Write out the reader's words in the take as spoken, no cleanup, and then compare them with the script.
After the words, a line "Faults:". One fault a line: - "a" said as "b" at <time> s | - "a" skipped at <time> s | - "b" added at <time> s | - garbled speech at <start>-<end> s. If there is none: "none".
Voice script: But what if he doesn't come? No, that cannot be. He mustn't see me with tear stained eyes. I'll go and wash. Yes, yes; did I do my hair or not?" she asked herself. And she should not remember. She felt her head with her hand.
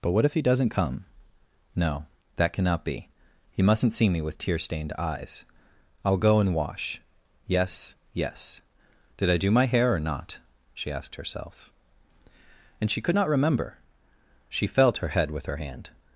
But what if he doesn't come? No, that cannot be. He mustn't see me with tear stained eyes. I'll go and wash. Yes, yes; did I do my hair or not?" she asked herself. And she could not remember. She felt her head with her hand.
Faults:
- "should" said as "could" at 13.0 s